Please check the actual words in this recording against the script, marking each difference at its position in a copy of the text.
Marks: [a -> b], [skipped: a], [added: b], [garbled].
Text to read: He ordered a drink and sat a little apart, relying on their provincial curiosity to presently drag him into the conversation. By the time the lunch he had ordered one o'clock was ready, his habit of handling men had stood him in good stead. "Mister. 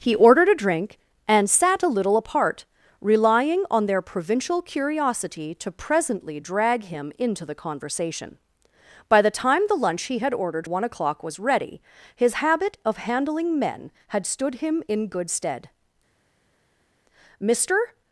He ordered a drink and sat a little apart, relying on their provincial curiosity to presently drag him into the conversation. By the time the lunch he had ordered one o'clock was ready, his habit of handling men had stood him in good stead. "Mister.